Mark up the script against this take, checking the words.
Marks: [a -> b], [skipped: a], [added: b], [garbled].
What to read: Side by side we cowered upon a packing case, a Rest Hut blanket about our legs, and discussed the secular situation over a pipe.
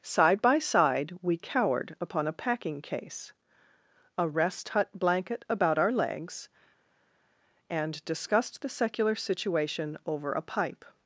Side by side we cowered upon a packing case, a Rest Hut blanket about our legs, and discussed the secular situation over a pipe.